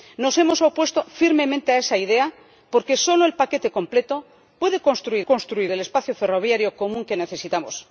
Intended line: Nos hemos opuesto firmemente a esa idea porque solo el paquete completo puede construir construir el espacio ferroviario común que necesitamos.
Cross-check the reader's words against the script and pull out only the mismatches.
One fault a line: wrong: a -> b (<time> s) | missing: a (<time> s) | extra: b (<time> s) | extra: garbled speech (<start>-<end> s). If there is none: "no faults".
no faults